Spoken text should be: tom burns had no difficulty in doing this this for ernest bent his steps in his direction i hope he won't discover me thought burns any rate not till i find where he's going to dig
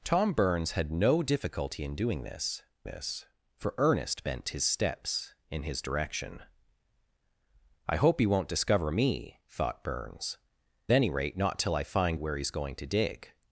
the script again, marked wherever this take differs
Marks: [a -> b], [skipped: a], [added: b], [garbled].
tom burns had no difficulty in doing this this for ernest bent his steps in his direction i hope he won't discover me thought burns any rate not till i find where he's going to dig